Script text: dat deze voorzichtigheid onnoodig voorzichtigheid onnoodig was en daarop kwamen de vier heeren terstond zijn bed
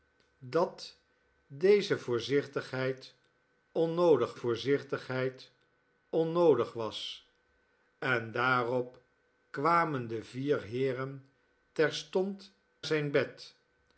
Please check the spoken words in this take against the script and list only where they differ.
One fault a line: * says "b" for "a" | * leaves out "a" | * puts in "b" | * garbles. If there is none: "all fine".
all fine